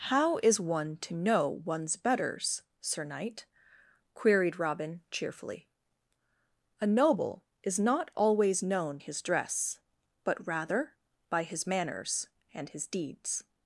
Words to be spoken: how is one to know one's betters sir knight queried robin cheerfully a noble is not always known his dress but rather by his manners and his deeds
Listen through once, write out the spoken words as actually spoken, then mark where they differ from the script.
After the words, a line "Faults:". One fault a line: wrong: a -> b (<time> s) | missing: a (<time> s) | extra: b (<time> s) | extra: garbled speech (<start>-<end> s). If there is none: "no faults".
how is one to know one's betters sir knight queried robin cheerfully a noble is not always known his dress but rather by his manners and his deeds
Faults:
no faults